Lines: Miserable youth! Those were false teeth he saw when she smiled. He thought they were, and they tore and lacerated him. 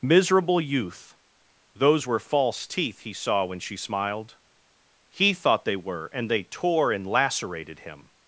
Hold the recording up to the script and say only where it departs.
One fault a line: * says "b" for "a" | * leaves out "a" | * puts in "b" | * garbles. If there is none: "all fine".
all fine